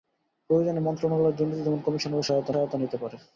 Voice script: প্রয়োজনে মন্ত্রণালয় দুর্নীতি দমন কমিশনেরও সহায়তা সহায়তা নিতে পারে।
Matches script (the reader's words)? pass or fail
pass